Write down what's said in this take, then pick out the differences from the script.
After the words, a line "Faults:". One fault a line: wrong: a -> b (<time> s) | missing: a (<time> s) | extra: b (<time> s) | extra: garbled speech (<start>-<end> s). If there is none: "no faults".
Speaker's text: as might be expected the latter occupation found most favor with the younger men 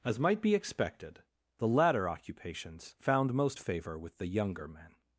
as might be expected the latter occupations found most favor with the younger men
Faults:
wrong: occupation -> occupations (2.1 s)